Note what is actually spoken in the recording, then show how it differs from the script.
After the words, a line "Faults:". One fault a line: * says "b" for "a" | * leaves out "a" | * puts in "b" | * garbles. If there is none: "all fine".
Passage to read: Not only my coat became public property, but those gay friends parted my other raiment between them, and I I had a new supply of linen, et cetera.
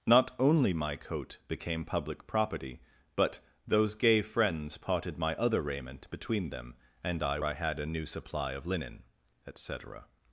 Not only my coat became public property, but those gay friends parted my other raiment between them, and I I had a new supply of linen, et cetera.
Faults:
all fine